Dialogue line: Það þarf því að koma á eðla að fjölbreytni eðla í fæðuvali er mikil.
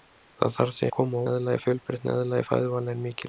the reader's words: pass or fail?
pass